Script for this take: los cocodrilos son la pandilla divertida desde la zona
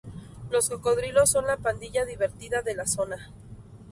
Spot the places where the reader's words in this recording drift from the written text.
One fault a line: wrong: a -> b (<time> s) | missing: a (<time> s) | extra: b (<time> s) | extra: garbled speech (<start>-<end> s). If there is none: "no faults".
wrong: desde -> de (2.6 s)